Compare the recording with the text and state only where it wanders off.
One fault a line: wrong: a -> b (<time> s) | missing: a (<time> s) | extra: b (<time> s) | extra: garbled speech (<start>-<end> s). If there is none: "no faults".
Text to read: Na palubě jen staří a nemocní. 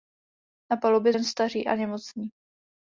no faults